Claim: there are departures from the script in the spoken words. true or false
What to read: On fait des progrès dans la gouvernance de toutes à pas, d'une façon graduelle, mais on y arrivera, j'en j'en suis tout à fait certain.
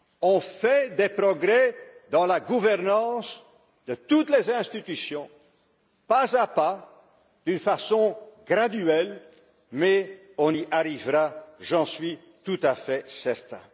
true